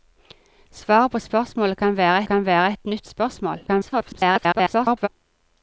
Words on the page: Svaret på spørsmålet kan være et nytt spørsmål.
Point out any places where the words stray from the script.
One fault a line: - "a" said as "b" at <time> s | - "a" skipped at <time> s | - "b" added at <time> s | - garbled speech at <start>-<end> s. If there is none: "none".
- "kan være" added at 2.3 s
- garbled speech at 3.7-5.1 s